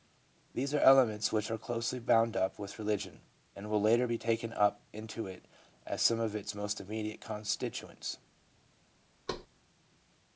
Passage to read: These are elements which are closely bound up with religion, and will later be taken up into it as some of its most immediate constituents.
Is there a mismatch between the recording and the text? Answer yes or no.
no